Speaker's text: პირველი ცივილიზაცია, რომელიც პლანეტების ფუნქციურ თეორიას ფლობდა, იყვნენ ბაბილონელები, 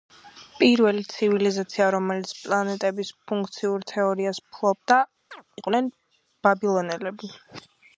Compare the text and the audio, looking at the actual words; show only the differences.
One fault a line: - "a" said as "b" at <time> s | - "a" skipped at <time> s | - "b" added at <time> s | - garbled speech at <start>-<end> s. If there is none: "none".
none